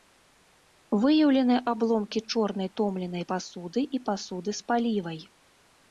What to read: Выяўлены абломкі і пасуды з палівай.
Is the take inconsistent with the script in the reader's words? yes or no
yes